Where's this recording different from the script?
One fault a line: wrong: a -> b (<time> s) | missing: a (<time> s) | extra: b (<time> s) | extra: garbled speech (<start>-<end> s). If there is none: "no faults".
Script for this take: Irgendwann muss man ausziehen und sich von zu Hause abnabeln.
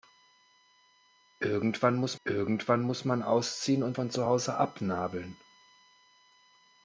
extra: irgendwann muss (2.2 s)
missing: sich (4.0 s)